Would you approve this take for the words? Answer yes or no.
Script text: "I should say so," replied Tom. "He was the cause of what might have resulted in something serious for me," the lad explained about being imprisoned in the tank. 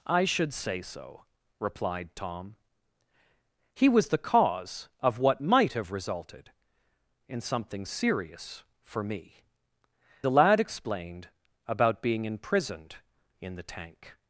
yes